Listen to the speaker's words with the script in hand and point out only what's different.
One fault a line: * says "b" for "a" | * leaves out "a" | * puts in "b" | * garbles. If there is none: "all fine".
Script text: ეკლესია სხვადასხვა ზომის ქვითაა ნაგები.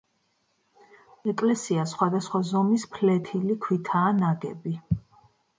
* puts in "ფლეთილი"